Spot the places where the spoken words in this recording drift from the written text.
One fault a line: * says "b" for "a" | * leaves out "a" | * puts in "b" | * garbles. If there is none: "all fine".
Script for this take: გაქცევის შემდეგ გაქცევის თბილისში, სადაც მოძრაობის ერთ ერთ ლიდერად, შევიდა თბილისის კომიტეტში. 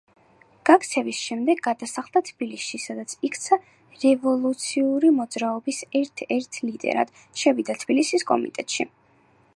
* says "გადასახლდა" for "გაქცევის"
* puts in "იქცა რევოლუციური"